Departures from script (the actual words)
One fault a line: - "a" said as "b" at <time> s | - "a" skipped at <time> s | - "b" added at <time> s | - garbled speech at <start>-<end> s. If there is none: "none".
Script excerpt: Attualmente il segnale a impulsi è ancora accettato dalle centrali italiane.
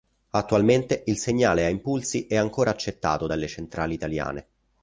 none